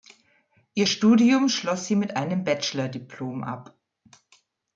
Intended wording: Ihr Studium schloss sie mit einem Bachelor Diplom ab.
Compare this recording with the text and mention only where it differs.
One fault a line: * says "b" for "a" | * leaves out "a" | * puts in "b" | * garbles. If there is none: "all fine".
all fine